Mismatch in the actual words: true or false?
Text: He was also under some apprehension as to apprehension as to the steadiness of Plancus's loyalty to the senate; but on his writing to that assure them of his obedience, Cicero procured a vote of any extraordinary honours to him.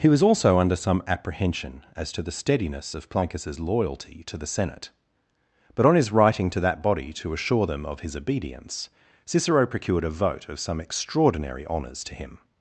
true